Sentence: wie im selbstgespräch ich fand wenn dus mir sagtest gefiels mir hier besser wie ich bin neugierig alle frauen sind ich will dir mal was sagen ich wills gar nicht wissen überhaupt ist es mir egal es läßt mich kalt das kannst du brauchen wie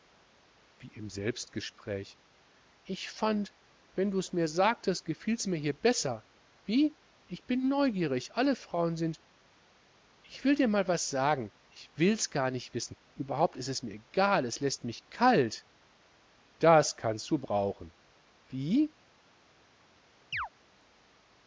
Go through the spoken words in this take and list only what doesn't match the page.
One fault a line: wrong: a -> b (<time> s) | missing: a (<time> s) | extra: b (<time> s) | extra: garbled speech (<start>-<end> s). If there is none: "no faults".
no faults